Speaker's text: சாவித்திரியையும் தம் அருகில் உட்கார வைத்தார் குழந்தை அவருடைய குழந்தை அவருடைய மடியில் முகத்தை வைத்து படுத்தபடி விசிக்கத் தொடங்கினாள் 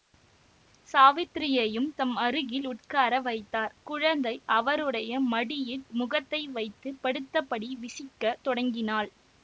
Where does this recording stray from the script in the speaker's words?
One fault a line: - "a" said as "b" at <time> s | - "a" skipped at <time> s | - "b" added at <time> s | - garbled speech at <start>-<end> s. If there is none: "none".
- "குழந்தை அவருடைய" skipped at 5.2 s